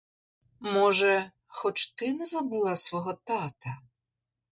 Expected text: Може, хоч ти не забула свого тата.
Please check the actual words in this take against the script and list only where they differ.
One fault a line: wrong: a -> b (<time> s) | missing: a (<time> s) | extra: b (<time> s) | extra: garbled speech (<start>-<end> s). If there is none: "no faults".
no faults